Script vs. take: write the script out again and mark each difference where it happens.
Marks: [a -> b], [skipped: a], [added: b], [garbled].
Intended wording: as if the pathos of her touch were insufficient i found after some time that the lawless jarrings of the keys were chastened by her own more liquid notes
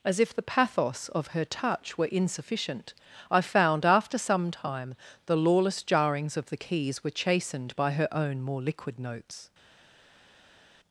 as if the pathos of her touch were insufficient i found after some time [skipped: that] the lawless jarrings of the keys were chastened by her own more liquid notes